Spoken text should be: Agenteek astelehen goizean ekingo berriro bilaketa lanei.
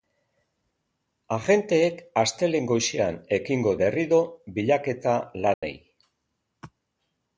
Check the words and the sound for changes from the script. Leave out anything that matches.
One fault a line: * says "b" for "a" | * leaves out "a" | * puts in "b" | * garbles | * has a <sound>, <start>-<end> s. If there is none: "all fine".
* has a dropout, 5.5-5.6 s